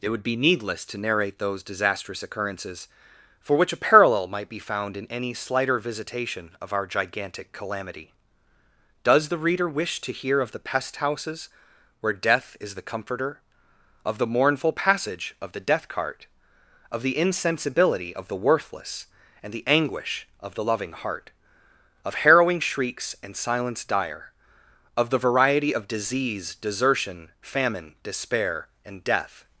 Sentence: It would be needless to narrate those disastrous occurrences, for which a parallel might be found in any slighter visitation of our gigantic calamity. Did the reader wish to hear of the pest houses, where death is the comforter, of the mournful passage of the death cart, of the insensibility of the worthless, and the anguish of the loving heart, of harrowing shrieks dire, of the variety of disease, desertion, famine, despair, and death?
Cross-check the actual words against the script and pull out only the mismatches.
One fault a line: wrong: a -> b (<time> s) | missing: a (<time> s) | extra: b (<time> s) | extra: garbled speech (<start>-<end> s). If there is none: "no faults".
wrong: Did -> Does (9.0 s)
extra: and silence (23.2 s)